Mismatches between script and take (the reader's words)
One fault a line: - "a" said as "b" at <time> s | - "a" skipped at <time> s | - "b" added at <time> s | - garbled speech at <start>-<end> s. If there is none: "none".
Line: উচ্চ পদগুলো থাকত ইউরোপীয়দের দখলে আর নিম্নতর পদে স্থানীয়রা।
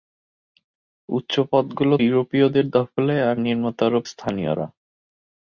- "থাকত" skipped at 1.9 s
- "পদে" skipped at 3.9 s